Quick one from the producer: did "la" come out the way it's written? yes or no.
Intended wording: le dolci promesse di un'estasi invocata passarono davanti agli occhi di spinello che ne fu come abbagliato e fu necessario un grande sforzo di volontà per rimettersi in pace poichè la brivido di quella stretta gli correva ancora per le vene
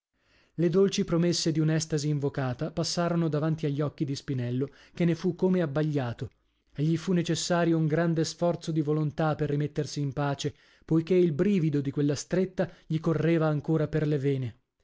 no